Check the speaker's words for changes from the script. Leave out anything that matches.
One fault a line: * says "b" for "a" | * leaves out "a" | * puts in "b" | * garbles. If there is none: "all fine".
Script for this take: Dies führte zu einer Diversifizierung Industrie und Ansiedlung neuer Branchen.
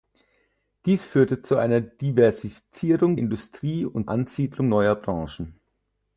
all fine